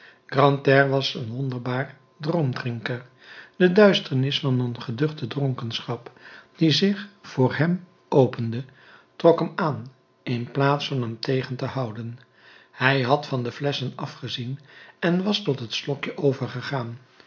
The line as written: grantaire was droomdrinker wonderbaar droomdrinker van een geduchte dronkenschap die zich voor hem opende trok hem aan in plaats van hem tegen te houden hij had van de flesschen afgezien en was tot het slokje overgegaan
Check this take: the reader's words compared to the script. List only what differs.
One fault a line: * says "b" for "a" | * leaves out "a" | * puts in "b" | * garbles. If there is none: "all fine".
* says "een" for "droomdrinker"
* puts in "de duisternis"